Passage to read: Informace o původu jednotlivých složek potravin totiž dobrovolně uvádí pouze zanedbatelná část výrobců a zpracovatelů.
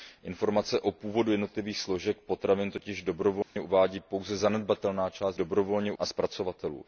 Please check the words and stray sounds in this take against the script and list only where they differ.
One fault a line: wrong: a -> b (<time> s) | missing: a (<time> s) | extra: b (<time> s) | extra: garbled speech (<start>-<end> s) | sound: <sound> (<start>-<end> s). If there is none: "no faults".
sound: dropout (3.4-3.6 s)
wrong: výrobců -> dobrovolně (5.3 s)